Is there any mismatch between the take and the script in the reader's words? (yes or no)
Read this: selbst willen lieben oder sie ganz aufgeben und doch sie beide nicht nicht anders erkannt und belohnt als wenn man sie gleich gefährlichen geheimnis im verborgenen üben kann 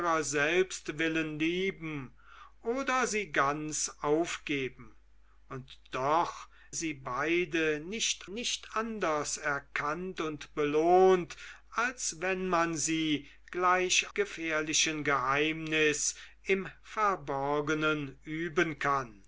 no